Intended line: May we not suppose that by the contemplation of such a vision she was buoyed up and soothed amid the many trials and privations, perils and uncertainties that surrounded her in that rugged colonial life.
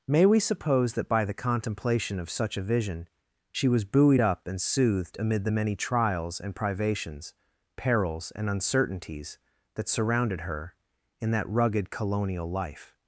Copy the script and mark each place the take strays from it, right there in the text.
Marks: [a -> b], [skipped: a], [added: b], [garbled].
May we [skipped: not] suppose that by the contemplation of such a vision she was buoyed up and soothed amid the many trials and privations, perils and uncertainties that surrounded her in that rugged colonial life.